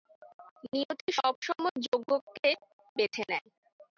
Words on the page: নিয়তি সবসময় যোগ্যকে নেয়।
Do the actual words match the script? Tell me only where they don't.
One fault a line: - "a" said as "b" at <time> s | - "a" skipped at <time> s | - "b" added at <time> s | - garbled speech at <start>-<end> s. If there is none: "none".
- "বেছে" added at 3.0 s